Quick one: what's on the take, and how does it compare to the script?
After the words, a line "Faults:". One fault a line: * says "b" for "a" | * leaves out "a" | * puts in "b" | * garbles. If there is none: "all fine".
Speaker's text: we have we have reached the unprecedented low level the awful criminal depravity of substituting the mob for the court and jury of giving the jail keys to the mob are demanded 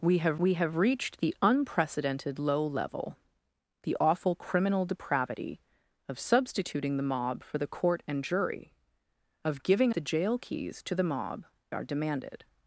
we have we have reached the unprecedented low level the awful criminal depravity of substituting the mob for the court and jury of giving the jail keys to the mob are demanded
Faults:
all fine